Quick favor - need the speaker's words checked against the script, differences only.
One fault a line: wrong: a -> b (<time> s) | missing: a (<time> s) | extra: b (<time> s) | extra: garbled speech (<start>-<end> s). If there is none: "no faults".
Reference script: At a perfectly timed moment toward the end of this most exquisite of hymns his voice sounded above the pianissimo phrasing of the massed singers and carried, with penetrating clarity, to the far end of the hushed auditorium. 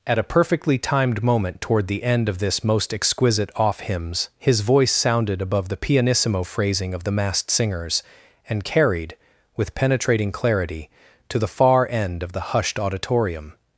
wrong: of -> off (3.5 s)